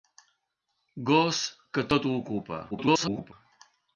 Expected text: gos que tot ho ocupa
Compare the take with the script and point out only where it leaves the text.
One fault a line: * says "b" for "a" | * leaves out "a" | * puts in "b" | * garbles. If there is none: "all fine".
* garbles